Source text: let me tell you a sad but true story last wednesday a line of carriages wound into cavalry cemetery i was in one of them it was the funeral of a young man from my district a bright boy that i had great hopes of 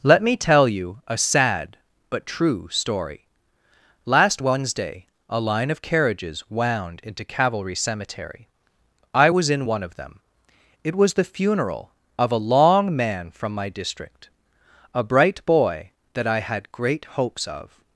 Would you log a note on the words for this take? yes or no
yes